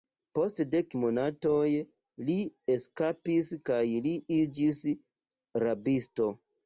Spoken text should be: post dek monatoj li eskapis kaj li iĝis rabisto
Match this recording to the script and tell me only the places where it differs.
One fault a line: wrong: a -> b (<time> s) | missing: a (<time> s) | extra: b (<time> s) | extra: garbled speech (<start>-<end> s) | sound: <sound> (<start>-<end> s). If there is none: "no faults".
no faults